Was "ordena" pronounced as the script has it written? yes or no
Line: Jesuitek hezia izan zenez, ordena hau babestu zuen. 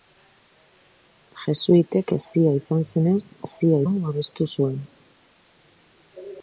no